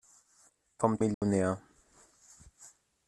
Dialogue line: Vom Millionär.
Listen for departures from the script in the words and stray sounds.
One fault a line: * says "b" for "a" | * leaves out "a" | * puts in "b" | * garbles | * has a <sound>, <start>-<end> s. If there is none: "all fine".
* has a dropout, 1.1-1.2 s